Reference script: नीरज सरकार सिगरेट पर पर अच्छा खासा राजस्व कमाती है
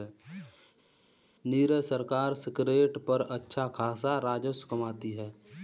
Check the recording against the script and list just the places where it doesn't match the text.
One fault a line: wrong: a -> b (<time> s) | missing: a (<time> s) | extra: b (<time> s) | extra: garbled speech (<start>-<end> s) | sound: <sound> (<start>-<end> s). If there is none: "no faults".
missing: पर (3.2 s)